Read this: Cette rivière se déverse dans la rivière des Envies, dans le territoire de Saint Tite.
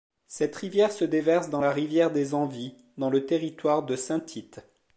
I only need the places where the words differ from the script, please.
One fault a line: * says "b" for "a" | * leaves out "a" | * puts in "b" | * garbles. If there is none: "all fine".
all fine